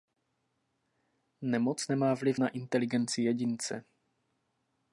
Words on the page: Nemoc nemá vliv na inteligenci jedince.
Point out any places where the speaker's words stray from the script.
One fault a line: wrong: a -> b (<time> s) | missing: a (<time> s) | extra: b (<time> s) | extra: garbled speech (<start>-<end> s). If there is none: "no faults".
no faults